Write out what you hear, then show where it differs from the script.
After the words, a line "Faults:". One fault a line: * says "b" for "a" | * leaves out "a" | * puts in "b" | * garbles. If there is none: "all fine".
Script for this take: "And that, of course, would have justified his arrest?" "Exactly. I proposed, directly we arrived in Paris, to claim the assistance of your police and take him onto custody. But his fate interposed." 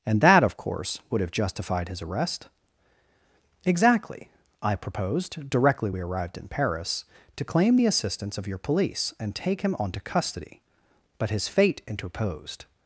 "And that, of course, would have justified his arrest?" "Exactly. I proposed, directly we arrived in Paris, to claim the assistance of your police and take him onto custody. But his fate interposed."
Faults:
all fine